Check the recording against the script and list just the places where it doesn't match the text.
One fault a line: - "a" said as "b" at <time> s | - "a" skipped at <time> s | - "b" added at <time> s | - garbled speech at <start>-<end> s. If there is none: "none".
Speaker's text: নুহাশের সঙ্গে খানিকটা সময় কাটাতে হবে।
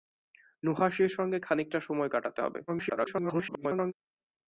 - garbled speech at 2.7-3.9 s